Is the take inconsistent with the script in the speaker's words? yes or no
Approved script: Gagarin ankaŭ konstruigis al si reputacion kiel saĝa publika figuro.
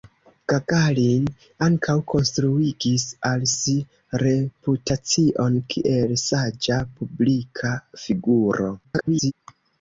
yes